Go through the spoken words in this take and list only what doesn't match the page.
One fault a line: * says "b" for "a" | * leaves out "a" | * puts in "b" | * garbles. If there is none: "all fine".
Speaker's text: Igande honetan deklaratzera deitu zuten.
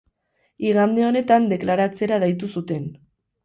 all fine